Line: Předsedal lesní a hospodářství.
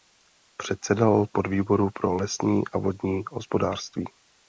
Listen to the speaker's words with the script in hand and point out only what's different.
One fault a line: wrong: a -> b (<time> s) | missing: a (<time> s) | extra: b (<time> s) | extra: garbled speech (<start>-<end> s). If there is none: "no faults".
extra: podvýboru pro (1.3 s)
extra: vodní (2.8 s)